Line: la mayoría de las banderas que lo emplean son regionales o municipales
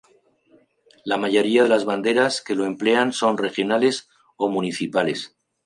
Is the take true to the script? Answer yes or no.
yes